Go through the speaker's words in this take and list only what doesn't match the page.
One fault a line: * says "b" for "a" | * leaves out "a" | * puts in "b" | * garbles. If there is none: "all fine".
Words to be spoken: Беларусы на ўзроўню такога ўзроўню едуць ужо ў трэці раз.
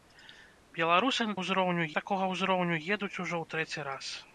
all fine